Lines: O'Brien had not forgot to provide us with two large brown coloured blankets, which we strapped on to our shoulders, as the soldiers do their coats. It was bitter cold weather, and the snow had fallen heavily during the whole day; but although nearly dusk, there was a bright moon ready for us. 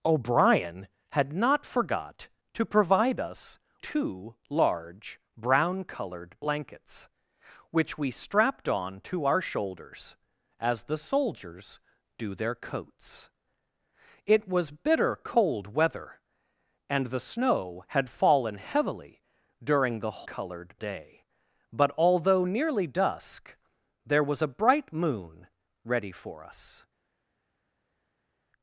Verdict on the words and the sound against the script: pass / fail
fail